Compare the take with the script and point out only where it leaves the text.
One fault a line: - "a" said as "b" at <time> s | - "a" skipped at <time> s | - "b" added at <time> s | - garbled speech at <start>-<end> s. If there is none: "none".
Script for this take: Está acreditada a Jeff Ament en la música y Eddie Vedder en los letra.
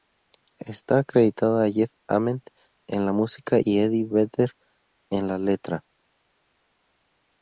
- "los" said as "la" at 5.3 s